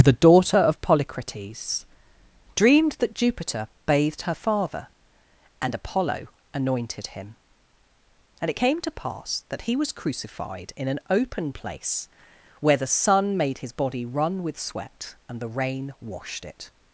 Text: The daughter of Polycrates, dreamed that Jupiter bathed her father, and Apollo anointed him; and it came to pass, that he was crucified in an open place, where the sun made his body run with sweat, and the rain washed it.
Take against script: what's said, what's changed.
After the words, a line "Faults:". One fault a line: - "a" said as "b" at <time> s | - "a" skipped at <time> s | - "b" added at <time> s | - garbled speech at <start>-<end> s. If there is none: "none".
The daughter of Polycrates, dreamed that Jupiter bathed her father, and Apollo anointed him; and it came to pass, that he was crucified in an open place, where the sun made his body run with sweat, and the rain washed it.
Faults:
none